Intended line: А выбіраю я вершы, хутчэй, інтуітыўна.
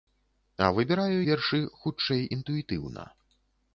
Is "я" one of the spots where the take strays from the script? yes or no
yes